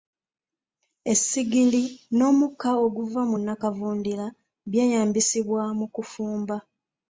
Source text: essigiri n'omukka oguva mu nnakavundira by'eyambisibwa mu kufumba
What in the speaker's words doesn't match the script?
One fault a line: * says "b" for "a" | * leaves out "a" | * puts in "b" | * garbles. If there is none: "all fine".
all fine